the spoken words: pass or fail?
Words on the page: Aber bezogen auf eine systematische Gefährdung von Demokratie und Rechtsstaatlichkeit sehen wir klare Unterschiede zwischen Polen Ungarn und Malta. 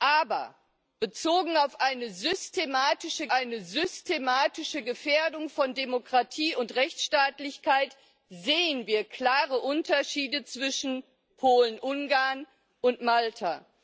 fail